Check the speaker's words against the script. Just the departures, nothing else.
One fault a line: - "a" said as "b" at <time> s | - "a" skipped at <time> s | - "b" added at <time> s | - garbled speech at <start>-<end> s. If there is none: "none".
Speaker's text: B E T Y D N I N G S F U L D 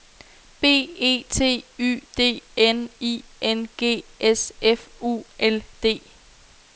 none